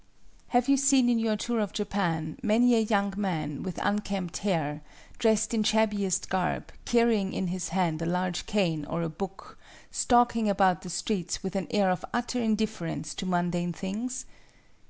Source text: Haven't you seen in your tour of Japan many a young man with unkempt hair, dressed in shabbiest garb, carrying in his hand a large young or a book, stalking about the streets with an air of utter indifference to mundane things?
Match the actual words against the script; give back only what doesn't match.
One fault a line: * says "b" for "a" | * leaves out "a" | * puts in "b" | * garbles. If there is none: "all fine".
* says "Have" for "Haven't"
* says "cane" for "young"